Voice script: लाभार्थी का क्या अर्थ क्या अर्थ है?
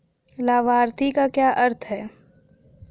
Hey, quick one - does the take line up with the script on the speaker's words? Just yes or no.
no